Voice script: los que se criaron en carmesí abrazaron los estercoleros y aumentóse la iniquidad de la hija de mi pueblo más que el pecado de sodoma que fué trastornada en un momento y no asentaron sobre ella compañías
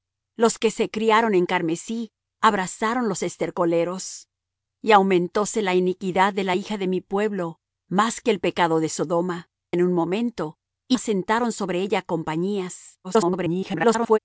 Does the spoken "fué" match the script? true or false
false